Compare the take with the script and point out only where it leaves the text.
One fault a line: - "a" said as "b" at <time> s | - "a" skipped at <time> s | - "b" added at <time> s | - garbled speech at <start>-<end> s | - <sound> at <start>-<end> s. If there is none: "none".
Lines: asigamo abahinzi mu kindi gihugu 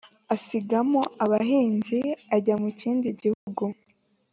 - "ajya" added at 2.4 s
- dropout at 3.3-3.5 s